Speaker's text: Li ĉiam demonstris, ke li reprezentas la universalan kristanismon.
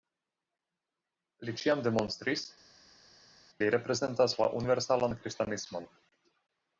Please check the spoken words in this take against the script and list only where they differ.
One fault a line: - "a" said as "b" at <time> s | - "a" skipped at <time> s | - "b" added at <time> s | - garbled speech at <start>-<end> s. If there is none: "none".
- "ke" skipped at 2.5 s